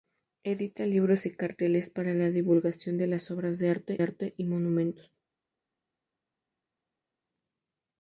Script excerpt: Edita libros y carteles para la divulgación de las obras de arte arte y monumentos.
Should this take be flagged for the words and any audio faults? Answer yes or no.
no